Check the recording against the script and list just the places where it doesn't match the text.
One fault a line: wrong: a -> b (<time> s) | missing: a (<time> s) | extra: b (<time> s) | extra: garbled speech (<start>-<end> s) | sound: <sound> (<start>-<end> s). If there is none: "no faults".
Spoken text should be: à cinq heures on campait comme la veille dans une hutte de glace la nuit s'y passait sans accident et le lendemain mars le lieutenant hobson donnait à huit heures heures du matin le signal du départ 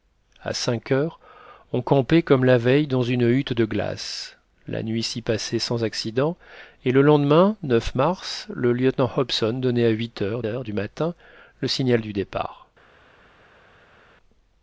no faults